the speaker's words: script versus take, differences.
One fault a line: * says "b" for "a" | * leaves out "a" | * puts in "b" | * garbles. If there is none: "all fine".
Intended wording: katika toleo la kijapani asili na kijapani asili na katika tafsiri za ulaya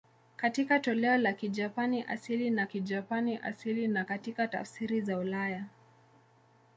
all fine